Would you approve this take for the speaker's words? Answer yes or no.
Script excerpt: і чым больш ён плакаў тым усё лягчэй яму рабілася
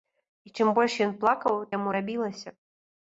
no